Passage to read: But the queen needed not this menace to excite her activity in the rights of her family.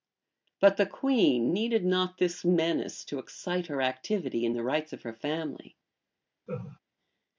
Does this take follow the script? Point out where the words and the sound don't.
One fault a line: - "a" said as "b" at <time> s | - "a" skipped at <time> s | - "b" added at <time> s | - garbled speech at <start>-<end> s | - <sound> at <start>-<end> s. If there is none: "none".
- laugh at 6.5-6.8 s